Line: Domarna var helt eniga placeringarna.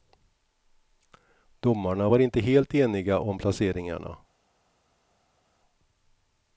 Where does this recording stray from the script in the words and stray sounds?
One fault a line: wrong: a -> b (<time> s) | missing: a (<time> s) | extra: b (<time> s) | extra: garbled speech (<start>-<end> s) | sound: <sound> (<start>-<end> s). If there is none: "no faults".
extra: inte (2.2 s)
extra: om (3.2 s)